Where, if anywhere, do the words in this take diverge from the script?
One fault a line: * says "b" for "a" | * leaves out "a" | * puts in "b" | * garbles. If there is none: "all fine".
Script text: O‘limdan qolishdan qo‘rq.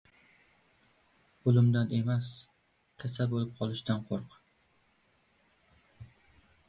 * puts in "emas kasal bo‘lib"